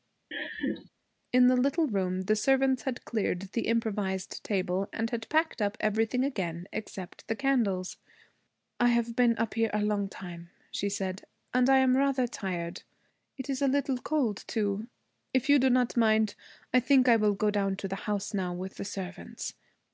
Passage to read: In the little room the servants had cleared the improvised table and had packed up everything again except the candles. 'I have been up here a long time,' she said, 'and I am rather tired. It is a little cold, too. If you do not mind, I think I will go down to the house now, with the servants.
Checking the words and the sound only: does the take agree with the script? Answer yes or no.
no